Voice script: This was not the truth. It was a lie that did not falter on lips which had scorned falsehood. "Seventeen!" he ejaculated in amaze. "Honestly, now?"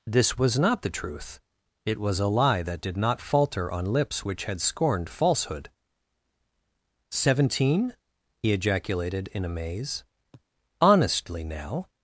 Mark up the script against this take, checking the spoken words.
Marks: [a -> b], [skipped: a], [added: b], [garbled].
This was not the truth. It was a lie that did not falter on lips which had scorned falsehood. "Seventeen!" he ejaculated in amaze. "Honestly, now?"